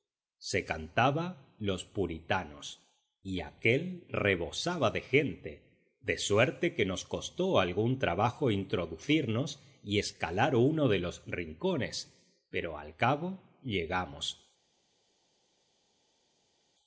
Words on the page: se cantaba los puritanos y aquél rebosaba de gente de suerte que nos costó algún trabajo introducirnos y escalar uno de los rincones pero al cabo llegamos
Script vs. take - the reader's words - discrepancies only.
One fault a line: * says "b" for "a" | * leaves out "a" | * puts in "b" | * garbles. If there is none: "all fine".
all fine